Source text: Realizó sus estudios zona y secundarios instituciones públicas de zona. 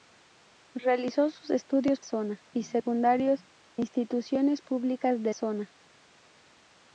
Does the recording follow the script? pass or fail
pass